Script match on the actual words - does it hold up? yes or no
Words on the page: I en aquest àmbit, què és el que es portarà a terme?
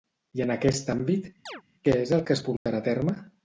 yes